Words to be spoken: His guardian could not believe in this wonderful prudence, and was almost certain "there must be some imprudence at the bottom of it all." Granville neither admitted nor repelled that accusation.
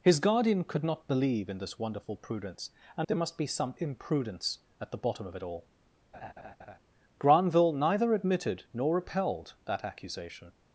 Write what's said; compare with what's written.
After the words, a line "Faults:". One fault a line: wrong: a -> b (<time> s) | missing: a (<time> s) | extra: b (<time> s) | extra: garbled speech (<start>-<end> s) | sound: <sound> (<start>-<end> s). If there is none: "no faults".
His guardian could not believe in this wonderful prudence, and "there must be some imprudence at the bottom of it all." Granville neither admitted nor repelled that accusation.
Faults:
missing: was almost certain (3.1 s)
sound: laugh (6.1-6.8 s)